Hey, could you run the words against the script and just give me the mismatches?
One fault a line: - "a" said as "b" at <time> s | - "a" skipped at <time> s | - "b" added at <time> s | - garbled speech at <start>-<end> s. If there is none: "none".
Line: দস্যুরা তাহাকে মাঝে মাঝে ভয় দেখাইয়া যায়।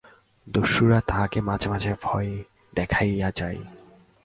none